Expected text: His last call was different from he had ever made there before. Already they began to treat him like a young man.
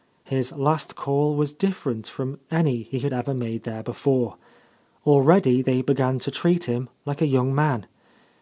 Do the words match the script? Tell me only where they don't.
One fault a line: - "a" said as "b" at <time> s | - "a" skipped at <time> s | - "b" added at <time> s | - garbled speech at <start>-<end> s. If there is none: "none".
- "any" added at 2.5 s